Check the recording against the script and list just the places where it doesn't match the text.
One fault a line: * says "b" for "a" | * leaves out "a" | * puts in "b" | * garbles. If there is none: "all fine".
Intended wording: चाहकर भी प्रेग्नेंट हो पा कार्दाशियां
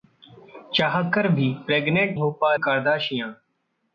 all fine